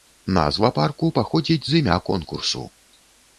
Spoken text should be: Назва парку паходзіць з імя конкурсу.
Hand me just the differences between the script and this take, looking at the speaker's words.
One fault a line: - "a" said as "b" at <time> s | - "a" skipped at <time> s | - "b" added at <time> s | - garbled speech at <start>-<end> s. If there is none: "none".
none